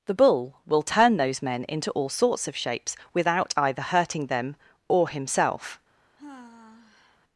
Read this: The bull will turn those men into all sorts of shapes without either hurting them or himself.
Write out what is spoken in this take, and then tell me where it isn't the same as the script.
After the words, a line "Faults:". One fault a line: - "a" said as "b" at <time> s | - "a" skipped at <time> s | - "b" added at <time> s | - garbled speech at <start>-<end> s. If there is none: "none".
The bull will turn those men into all sorts of shapes without either hurting them or himself.
Faults:
none